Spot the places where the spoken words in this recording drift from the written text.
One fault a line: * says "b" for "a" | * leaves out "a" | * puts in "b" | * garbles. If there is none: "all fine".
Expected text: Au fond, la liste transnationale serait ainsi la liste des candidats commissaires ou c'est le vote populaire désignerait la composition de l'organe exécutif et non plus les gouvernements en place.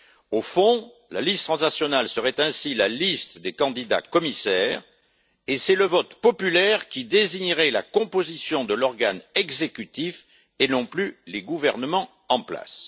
* says "et" for "ou"
* puts in "qui"